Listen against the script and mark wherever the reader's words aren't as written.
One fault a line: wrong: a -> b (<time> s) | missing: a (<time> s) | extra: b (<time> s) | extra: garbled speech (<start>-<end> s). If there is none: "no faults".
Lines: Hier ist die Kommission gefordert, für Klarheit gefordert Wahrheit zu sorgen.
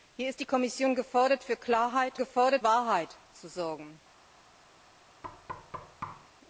no faults